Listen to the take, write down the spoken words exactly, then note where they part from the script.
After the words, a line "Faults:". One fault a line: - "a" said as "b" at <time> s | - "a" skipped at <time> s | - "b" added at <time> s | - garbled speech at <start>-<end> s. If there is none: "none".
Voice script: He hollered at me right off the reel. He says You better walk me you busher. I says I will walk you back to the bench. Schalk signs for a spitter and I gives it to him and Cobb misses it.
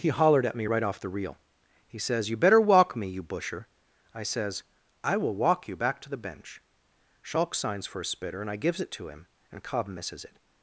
He hollered at me right off the reel. He says You better walk me you busher. I says I will walk you back to the bench. Schalk signs for a spitter and I gives it to him and Cobb misses it.
Faults:
none